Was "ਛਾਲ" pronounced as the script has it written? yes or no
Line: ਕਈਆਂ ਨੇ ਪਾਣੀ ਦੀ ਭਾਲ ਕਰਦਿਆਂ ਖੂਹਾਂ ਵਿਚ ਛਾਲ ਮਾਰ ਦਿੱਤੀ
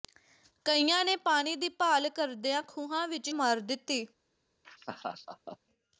no